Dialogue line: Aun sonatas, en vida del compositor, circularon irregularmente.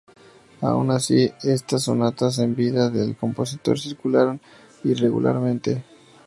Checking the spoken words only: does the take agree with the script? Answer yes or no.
no